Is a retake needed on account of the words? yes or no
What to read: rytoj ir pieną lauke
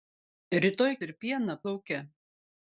no